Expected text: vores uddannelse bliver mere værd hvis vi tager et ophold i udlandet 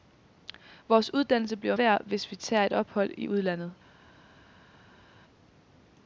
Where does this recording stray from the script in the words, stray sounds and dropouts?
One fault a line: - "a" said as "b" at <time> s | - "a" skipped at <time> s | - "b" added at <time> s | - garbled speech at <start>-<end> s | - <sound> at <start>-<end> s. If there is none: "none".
- "mere" skipped at 1.8 s